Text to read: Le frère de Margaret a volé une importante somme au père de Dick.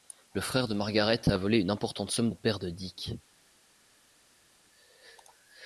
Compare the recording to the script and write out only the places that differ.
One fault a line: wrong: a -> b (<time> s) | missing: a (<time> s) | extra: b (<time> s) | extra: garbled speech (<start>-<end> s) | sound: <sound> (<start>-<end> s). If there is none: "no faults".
no faults